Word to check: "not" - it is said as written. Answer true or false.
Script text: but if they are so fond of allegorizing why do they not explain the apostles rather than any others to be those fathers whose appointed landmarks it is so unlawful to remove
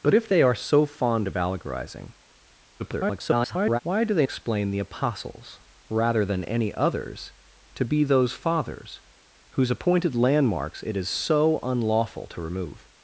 false